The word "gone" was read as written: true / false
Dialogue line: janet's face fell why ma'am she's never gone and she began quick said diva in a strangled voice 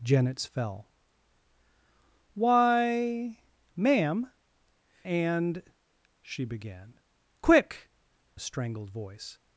false